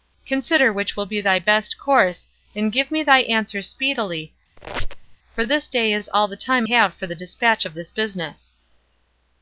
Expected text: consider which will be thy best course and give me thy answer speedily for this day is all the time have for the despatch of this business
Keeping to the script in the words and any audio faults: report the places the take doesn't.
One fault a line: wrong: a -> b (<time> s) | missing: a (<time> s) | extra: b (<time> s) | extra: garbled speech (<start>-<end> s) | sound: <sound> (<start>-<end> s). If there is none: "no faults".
sound: squeak (4.6-5.2 s)